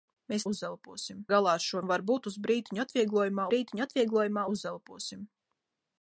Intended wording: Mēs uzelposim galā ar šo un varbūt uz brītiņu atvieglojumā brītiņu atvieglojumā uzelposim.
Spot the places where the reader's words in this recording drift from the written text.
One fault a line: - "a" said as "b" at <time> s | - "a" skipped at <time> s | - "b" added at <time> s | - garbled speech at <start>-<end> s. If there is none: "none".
none